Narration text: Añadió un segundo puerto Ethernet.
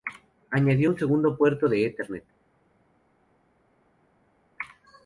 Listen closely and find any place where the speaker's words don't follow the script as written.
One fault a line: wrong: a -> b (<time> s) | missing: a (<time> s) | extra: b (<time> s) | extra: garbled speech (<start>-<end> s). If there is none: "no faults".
extra: de (1.7 s)